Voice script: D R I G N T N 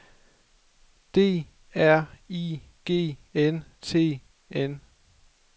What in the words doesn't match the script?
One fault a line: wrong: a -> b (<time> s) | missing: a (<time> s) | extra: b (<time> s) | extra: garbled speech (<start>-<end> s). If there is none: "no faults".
no faults